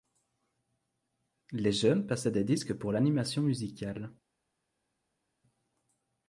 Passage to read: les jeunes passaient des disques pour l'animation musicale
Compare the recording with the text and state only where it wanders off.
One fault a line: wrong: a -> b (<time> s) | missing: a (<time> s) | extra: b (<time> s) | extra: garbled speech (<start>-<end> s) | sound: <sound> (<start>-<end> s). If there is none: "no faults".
no faults